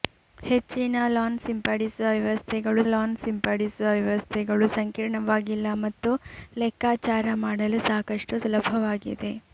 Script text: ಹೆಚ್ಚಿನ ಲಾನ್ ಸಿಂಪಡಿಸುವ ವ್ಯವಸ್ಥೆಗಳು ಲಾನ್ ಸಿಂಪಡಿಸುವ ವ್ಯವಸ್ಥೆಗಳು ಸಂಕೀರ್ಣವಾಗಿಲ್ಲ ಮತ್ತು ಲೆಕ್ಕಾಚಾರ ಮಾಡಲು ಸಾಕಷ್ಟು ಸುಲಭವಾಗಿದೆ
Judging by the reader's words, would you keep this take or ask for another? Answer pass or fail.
pass